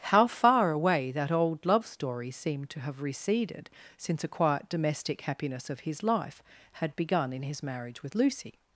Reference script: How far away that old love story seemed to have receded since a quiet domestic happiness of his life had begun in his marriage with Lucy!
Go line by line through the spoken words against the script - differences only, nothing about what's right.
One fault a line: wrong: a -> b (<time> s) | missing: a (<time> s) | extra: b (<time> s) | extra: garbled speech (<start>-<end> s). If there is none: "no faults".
no faults